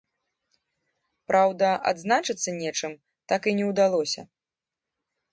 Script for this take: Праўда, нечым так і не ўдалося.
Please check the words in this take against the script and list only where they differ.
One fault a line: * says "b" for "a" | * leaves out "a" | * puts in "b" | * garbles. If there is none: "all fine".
* puts in "адзначыцца"